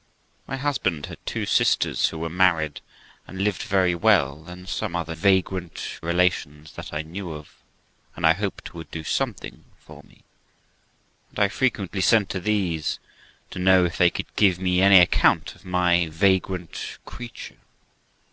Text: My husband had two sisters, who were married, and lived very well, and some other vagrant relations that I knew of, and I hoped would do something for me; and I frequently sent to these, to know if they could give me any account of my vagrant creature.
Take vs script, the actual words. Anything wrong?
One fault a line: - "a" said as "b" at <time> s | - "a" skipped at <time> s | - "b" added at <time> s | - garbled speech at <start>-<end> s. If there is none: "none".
none